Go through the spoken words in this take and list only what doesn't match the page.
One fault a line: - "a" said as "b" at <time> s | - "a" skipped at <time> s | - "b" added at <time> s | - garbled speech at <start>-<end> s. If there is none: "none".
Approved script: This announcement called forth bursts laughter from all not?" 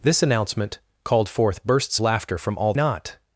none